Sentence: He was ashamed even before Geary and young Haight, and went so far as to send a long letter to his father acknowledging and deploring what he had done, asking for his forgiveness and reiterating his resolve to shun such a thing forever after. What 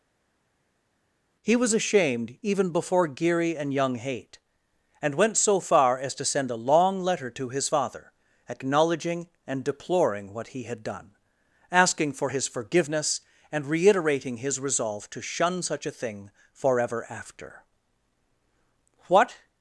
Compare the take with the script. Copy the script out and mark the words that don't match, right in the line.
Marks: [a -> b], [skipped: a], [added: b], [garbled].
He was ashamed even before Geary and young Haight, and went so far as to send a long letter to his father acknowledging and deploring what he had done, asking for his forgiveness and reiterating his resolve to shun such a thing forever after. What